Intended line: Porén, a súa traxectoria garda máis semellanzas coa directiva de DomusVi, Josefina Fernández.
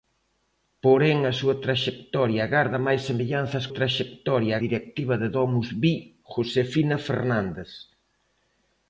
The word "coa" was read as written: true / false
false